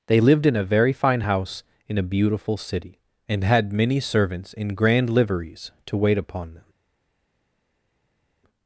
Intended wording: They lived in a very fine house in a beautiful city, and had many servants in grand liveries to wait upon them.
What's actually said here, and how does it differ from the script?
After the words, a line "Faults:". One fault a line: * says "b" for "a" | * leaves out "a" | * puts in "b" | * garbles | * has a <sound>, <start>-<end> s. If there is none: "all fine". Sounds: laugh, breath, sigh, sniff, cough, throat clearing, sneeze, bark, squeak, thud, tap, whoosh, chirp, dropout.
They lived in a very fine house in a beautiful city, and had many servants in grand liveries to wait upon them.
Faults:
all fine